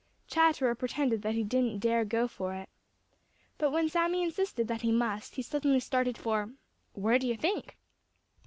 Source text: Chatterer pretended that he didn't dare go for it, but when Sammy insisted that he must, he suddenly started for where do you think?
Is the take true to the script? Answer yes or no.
yes